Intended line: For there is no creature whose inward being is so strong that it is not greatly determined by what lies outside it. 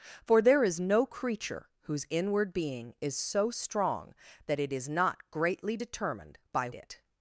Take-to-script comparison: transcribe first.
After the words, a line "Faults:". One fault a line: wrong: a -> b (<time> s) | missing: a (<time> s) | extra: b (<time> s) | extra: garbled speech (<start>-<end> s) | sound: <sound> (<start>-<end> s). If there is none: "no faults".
For there is no creature whose inward being is so strong that it is not greatly determined by it.
Faults:
missing: what lies outside (6.7 s)